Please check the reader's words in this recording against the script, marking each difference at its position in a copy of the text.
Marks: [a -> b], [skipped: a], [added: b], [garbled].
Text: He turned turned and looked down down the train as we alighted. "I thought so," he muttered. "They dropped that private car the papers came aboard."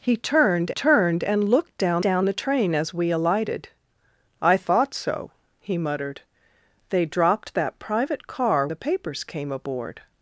He turned turned and looked down down the train as we alighted. "I thought so," he muttered. "They dropped that private car the papers came aboard."